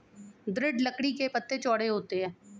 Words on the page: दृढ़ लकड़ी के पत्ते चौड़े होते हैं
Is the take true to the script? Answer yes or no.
yes